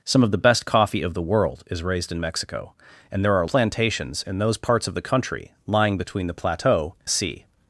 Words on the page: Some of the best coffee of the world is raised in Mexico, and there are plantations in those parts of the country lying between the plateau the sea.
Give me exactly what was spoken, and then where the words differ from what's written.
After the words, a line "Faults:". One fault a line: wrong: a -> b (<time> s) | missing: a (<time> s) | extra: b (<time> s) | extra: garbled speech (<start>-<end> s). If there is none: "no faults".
Some of the best coffee of the world is raised in Mexico, and there are plantations in those parts of the country lying between the plateau the sea.
Faults:
no faults